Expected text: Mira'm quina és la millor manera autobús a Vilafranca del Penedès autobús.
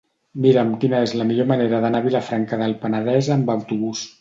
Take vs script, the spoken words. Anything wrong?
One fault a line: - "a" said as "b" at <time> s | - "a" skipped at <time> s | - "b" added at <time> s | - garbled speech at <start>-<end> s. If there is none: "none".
- "autobús" said as "d'anar" at 1.9 s
- "amb" added at 3.4 s